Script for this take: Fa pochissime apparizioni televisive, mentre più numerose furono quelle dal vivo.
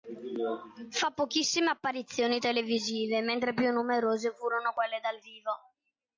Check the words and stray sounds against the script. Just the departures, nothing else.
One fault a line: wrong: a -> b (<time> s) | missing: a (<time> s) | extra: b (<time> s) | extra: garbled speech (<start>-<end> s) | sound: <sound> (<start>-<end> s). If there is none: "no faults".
no faults